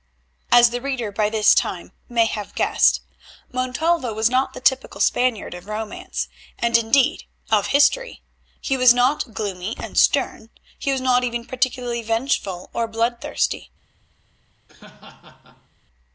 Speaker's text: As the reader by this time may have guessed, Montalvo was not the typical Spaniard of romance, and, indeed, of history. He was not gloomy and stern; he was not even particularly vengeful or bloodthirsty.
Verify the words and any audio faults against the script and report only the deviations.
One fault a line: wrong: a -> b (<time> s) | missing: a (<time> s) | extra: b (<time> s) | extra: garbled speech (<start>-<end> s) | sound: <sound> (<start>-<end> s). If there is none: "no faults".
sound: laugh (14.7-15.7 s)